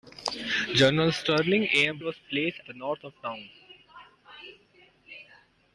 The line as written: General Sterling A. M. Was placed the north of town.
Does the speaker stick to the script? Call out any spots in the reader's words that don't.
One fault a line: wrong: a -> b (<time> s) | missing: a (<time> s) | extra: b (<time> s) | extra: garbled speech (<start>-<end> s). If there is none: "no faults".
no faults